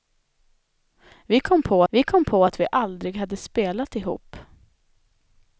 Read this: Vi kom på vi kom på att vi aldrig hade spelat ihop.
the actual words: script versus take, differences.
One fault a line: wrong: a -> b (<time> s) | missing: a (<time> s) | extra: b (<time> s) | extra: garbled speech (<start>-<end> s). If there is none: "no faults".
no faults